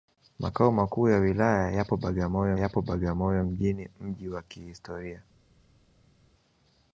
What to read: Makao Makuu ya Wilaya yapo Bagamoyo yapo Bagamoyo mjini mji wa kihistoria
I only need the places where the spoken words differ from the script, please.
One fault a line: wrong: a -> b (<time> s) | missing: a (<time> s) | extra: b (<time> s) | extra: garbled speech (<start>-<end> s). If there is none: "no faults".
no faults